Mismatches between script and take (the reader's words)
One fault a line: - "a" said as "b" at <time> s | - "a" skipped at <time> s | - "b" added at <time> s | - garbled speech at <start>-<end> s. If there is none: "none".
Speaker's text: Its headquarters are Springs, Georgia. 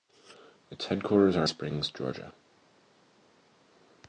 none